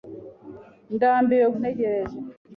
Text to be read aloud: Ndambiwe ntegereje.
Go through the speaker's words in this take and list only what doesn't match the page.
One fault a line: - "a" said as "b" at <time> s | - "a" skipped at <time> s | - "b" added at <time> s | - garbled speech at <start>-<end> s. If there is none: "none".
none